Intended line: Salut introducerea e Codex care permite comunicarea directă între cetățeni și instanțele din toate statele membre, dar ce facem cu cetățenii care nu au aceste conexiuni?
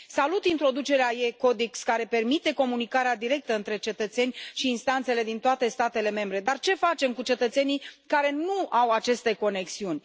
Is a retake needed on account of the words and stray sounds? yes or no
no